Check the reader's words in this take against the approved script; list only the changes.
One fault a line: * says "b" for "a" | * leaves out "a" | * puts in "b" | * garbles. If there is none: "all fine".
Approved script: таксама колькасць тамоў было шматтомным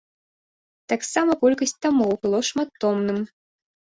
all fine